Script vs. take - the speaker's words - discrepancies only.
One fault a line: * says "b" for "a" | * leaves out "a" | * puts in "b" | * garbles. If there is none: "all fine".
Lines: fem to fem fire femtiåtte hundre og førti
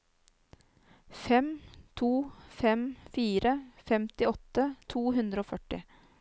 * puts in "to"